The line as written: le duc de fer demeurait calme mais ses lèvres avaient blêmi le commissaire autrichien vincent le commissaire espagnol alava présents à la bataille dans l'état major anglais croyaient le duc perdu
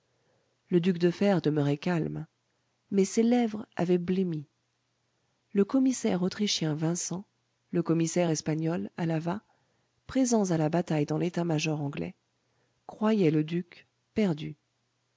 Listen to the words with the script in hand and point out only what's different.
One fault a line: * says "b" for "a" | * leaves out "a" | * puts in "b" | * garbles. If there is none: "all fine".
all fine